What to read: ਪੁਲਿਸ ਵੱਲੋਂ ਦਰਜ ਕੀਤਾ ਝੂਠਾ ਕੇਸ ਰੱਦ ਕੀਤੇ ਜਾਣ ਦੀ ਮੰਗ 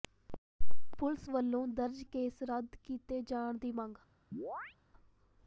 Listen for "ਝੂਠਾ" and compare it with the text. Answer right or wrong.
wrong